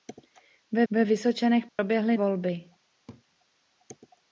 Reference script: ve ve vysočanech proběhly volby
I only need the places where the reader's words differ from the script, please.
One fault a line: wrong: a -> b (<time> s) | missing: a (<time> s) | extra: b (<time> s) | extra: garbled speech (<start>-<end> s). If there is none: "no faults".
no faults